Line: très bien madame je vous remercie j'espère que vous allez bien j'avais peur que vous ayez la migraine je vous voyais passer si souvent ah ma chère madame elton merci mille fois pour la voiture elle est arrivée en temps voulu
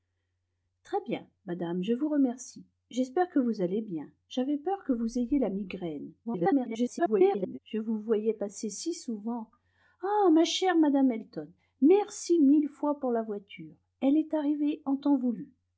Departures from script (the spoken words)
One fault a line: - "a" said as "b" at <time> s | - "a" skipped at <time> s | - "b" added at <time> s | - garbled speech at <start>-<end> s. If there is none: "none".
- garbled speech at 6.2-7.6 s